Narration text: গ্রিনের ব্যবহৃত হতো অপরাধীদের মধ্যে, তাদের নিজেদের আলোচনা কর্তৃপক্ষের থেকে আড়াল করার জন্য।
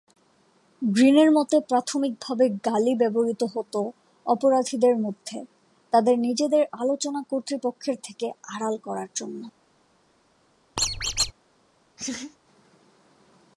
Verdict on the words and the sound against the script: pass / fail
fail